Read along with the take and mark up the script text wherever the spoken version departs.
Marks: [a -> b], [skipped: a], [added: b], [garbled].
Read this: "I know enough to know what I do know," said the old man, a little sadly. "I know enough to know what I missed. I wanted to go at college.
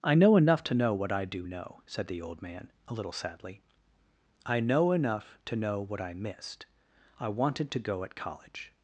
"I know enough to know what I do know," said the old man, a little sadly. "I know enough to know what I missed. I wanted to go at college.